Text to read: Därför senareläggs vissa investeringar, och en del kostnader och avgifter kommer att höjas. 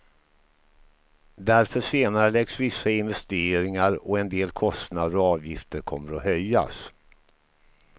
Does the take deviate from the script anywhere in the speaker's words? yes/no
no